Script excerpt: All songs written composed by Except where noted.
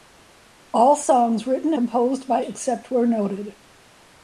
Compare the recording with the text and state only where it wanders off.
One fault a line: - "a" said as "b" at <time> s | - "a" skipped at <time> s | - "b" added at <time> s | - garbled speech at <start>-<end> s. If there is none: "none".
none